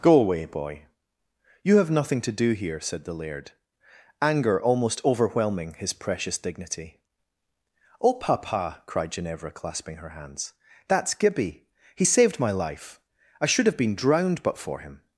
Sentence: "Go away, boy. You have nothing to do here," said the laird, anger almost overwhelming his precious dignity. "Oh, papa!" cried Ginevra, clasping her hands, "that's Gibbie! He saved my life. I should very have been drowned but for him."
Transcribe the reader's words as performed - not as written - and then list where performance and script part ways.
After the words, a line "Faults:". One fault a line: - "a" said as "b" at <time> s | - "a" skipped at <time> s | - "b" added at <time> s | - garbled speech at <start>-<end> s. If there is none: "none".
"Go away, boy. You have nothing to do here," said the laird, anger almost overwhelming his precious dignity. "Oh, papa!" cried Ginevra, clasping her hands, "that's Gibbie! He saved my life. I should have been drowned but for him."
Faults:
- "very" skipped at 13.7 s